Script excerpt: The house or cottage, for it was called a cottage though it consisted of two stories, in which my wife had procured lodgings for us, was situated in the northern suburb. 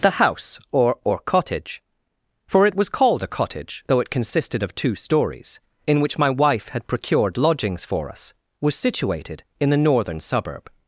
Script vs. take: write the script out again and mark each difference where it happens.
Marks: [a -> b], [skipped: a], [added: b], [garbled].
The house or [added: or] cottage, for it was called a cottage though it consisted of two stories, in which my wife had procured lodgings for us, was situated in the northern suburb.